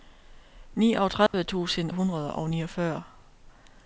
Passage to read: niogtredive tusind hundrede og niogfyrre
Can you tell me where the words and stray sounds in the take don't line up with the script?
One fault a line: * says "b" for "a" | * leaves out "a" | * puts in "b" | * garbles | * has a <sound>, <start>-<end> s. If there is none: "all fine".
* has a dropout, 1.3-1.3 s